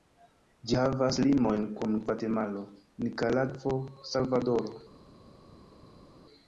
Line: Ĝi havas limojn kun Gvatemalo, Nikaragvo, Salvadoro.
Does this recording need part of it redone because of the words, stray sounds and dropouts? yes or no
no